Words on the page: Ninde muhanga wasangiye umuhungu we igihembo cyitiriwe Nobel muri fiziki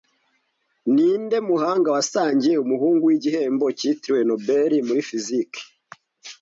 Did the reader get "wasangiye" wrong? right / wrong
right